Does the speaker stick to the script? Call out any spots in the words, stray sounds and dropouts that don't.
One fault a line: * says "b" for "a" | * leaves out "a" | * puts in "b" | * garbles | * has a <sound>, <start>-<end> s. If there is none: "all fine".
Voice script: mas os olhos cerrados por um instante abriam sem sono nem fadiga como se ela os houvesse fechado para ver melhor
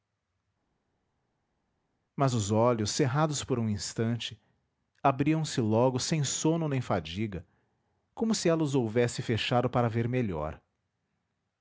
* puts in "se logo"